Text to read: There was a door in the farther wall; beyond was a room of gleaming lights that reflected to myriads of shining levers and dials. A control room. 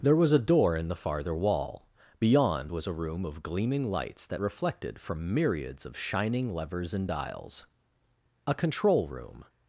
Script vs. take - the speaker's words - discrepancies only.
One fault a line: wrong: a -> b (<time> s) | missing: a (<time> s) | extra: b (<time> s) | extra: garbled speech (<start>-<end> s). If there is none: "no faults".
wrong: to -> from (5.0 s)